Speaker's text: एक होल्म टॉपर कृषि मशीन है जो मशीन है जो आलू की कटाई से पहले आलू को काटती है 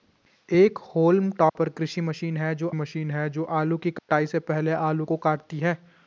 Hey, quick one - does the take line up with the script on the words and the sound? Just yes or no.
no